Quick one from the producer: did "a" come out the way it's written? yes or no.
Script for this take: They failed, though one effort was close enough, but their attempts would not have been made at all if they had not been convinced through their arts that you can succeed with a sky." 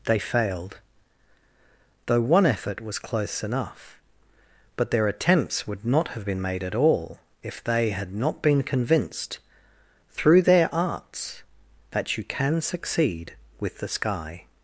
no